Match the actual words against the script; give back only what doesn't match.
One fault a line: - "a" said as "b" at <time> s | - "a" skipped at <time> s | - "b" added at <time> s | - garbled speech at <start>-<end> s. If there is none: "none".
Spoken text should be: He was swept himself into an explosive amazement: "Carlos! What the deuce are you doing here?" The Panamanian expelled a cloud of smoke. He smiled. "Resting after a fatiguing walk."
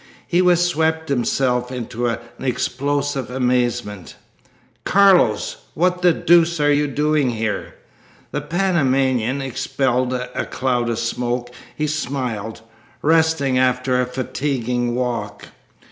none